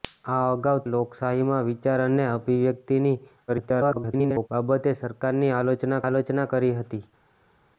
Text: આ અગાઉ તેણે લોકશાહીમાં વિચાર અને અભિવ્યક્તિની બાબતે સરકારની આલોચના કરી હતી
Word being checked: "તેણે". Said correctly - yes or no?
no